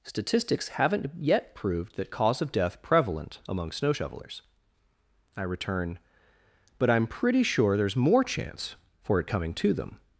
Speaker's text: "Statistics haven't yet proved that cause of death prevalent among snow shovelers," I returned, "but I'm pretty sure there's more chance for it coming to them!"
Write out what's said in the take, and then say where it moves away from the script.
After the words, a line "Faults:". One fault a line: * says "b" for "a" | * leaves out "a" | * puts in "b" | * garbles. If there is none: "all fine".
"Statistics haven't yet proved that cause of death prevalent among snow shovelers," I return, "but I'm pretty sure there's more chance for it coming to them!"
Faults:
* says "return" for "returned"